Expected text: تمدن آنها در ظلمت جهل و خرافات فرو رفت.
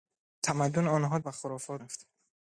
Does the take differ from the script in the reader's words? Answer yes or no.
yes